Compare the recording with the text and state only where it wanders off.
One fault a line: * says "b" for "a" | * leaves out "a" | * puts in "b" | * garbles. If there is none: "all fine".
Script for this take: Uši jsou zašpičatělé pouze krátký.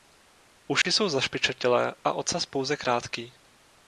* puts in "a ocas"